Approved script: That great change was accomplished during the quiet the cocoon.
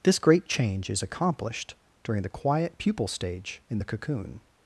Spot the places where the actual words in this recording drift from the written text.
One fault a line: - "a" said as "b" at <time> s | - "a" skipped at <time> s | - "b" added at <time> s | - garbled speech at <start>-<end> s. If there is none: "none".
- "That" said as "This" at 0.0 s
- "was" said as "is" at 0.9 s
- "pupal stage in" added at 2.8 s